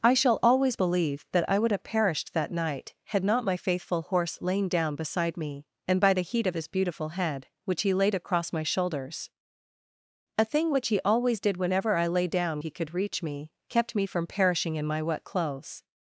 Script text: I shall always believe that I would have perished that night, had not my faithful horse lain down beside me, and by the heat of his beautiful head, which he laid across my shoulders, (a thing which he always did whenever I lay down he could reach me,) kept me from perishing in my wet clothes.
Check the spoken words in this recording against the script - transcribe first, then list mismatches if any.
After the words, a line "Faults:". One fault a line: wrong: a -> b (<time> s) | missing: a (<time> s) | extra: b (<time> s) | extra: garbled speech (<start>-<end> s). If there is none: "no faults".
I shall always believe that I would have perished that night, had not my faithful horse lain down beside me, and by the heat of his beautiful head, which he laid across my shoulders, (a thing which he always did whenever I lay down he could reach me,) kept me from perishing in my wet clothes.
Faults:
no faults